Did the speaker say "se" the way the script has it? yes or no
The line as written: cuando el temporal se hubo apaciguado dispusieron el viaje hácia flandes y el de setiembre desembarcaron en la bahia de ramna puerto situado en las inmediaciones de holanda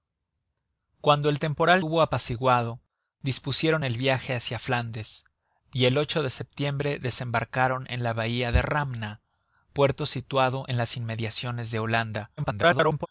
no